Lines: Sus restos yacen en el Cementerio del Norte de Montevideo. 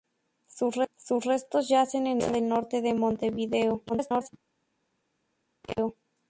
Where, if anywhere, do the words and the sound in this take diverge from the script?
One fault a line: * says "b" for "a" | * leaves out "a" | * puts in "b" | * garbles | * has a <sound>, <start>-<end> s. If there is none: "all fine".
* leaves out "el"
* garbles